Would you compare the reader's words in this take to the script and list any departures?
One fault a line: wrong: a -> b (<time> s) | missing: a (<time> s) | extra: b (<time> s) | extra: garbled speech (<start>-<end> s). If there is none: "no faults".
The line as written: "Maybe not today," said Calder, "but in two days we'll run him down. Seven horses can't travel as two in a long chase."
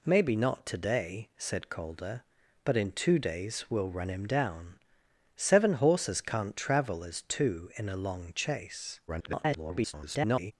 extra: garbled speech (9.1-10.5 s)